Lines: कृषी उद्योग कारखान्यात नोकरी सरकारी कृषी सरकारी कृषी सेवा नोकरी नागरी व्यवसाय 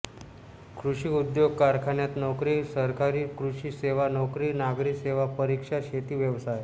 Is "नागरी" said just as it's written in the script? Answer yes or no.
no